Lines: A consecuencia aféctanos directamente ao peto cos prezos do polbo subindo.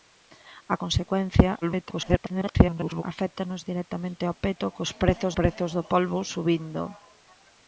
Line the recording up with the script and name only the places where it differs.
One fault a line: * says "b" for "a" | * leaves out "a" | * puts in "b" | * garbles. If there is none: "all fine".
* garbles
* puts in "prezos"